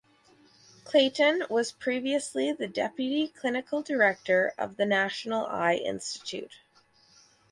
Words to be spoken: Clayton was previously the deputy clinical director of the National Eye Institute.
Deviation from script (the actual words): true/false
false